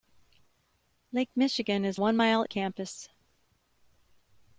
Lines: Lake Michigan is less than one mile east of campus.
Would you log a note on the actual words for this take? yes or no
yes